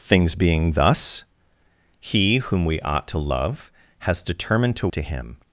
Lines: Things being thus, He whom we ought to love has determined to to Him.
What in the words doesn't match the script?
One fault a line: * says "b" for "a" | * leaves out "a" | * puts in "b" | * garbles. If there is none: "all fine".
all fine